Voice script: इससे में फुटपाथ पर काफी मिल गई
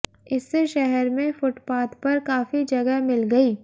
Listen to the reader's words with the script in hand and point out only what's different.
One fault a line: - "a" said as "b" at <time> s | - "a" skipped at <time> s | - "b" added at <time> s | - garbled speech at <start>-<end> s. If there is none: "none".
- "शहर" added at 0.7 s
- "जगह" added at 2.6 s